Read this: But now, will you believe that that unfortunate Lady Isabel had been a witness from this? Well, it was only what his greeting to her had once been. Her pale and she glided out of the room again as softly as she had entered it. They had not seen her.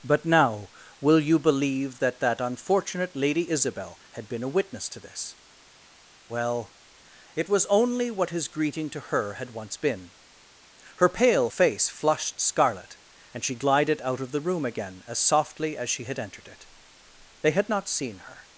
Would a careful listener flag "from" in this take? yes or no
yes